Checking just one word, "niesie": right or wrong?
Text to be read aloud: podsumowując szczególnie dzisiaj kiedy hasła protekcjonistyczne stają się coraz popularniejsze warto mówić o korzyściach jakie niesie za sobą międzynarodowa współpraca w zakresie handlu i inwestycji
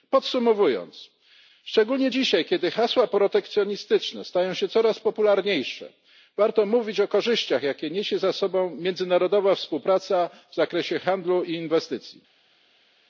right